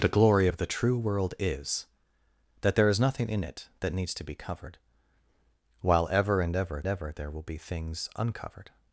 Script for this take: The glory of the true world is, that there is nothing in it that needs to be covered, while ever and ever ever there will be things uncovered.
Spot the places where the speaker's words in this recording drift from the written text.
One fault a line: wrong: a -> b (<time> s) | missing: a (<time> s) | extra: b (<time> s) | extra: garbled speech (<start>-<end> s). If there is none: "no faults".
no faults